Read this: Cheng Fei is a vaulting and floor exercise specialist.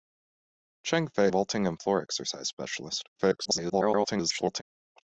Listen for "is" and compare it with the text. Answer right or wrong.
wrong